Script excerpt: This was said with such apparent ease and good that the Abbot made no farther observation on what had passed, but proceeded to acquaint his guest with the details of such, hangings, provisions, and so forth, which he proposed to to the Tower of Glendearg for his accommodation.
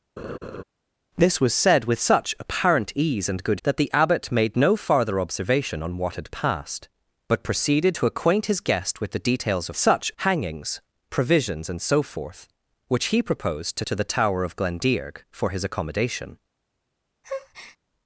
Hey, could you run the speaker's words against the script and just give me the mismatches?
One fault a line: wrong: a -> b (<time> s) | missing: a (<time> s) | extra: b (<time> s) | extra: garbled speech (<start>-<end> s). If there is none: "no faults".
no faults